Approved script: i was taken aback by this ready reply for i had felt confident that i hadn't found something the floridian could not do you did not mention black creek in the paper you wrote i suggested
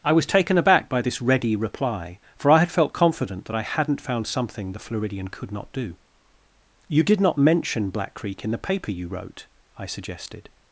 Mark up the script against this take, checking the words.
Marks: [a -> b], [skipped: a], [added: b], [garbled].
i was taken aback by this ready reply for i had felt confident that i hadn't found something the floridian could not do you did not mention black creek in the paper you wrote i suggested